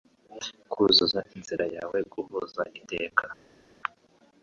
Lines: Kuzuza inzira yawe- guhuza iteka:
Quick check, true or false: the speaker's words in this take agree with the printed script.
true